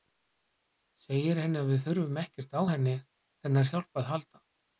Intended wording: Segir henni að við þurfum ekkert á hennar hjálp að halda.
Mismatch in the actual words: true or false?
false